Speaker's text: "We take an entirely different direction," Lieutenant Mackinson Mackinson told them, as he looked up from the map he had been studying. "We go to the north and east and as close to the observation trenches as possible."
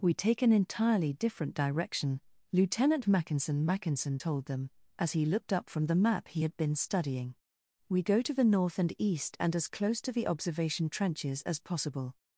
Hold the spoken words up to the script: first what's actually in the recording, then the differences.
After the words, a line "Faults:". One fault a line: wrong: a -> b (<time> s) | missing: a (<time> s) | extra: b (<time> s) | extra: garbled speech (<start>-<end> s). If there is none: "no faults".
"We take an entirely different direction," Lieutenant Mackinson Mackinson told them, as he looked up from the map he had been studying. "We go to the north and east and as close to the observation trenches as possible."
Faults:
no faults